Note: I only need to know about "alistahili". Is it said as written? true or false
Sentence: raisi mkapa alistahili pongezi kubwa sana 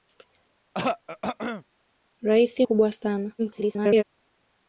false